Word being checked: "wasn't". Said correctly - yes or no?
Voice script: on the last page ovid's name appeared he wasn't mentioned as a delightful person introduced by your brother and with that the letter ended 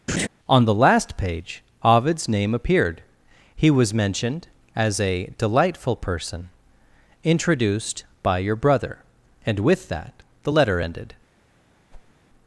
no